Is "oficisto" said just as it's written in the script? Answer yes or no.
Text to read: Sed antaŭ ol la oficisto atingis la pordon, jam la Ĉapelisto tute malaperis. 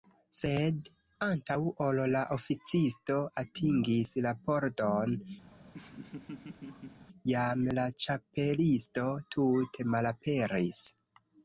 yes